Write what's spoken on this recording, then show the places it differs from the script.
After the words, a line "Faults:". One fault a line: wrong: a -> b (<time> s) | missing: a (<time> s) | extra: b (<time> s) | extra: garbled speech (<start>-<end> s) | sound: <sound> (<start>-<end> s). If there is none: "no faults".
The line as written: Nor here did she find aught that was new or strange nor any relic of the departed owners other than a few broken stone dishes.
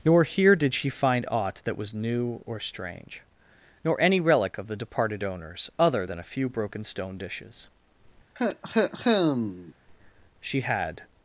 Nor here did she find aught that was new or strange nor any relic of the departed owners other than a few broken stone dishes. She had
Faults:
sound: cough (8.4-9.7 s)
extra: She had (10.4 s)